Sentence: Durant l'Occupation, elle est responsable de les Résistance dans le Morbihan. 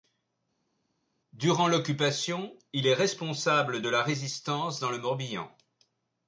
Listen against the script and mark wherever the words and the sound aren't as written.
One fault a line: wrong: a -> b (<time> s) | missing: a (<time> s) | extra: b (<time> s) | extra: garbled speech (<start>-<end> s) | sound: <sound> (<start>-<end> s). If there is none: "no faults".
wrong: elle -> il (2.7 s)
wrong: les -> la (3.9 s)